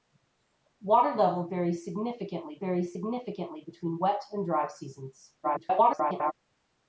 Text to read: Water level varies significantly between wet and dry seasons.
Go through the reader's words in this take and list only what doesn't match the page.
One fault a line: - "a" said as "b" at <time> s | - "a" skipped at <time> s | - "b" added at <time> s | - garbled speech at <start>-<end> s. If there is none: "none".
- "varies significantly" added at 2.6 s
- garbled speech at 5.4-6.3 s